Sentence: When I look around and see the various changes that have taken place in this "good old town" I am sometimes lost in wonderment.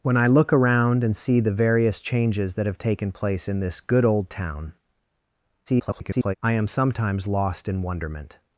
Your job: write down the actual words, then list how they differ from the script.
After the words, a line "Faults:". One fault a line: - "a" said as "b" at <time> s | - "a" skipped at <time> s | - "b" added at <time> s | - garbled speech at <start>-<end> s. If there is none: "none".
When I look around and see the various changes that have taken place in this "good old town" [garbled] I am sometimes lost in wonderment.
Faults:
- garbled speech at 5.7-6.3 s